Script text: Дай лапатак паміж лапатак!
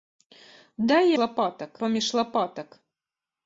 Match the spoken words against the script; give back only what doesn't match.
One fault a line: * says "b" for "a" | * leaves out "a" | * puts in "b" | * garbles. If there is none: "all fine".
all fine